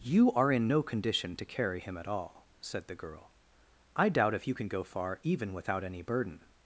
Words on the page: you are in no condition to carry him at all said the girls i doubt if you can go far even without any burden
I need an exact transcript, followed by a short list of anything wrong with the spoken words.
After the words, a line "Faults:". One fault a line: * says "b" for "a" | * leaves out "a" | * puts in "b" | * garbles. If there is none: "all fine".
you are in no condition to carry him at all said the girl i doubt if you can go far even without any burden
Faults:
* says "girl" for "girls"